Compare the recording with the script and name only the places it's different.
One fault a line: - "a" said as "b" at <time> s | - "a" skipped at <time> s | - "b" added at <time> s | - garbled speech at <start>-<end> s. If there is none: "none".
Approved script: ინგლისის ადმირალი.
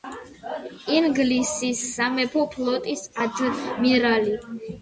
- "სამეფო ფლოტის" added at 1.9 s